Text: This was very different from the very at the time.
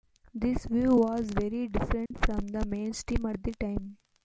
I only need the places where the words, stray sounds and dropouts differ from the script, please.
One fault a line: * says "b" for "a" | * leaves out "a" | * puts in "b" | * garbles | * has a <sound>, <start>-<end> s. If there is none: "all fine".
* puts in "view"
* has a dropout, 2.1-2.1 s
* says "mainstream" for "very"